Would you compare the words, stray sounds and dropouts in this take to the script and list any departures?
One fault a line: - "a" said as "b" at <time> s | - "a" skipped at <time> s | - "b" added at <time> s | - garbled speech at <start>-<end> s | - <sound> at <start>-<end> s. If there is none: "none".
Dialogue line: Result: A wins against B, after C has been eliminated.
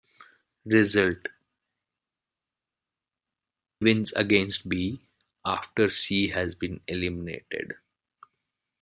- "A" skipped at 1.3 s